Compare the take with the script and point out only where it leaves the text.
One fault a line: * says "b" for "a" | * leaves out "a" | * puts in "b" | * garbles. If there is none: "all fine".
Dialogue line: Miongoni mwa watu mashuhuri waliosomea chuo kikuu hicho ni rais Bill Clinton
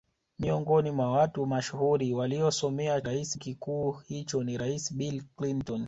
* says "rais" for "chuo"